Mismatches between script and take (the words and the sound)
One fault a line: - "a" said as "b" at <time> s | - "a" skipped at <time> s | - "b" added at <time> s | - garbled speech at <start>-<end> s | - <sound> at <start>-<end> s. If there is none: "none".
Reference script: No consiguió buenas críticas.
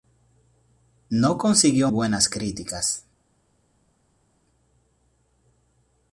none